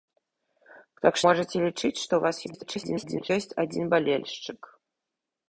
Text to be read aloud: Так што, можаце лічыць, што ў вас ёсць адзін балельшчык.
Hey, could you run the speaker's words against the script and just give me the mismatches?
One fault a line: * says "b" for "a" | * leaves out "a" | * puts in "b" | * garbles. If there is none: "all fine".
* leaves out "што"
* garbles